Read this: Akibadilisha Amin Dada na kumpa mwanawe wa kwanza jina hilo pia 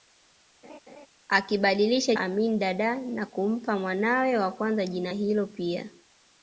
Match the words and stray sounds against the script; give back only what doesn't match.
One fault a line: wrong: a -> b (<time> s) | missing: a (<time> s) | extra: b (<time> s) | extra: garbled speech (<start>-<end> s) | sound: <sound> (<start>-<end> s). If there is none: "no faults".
sound: laugh (0.6-1.1 s)